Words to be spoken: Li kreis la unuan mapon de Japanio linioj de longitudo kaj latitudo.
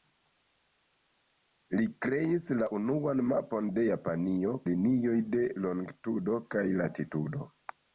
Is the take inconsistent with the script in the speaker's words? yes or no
no